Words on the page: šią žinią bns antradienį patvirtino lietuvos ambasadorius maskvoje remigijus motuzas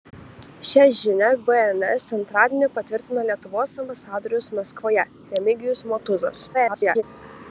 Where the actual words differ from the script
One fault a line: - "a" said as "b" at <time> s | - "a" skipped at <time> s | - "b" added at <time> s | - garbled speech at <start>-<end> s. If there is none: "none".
- garbled speech at 6.5-7.0 s